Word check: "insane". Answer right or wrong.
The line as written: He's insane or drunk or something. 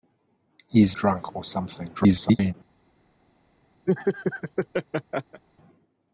wrong